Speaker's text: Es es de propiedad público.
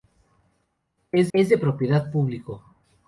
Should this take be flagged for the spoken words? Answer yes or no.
no